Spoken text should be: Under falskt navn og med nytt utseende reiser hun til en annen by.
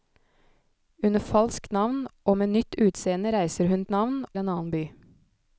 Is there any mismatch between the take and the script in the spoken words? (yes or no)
yes